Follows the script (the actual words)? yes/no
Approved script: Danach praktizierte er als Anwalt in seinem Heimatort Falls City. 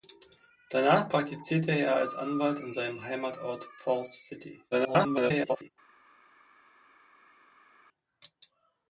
no